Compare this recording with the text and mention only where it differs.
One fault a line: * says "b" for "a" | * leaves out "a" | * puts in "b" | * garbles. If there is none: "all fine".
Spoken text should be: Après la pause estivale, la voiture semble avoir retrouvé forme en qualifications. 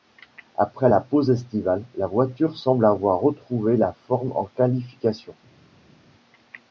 * puts in "la"